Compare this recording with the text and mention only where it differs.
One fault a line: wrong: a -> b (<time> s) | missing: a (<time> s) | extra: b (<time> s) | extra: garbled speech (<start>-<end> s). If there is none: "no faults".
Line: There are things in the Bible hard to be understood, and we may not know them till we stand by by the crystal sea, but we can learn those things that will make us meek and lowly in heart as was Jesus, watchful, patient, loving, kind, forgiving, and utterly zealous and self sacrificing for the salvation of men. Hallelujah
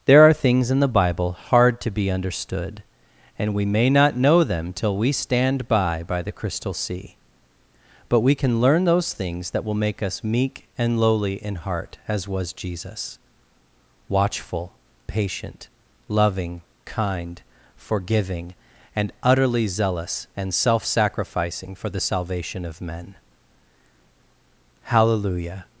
no faults